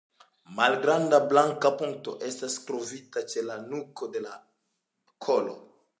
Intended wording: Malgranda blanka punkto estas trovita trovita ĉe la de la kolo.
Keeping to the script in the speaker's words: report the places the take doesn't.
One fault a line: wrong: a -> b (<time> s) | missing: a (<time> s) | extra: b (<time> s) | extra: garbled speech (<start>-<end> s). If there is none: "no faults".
missing: trovita (3.2 s)
extra: nuko (3.7 s)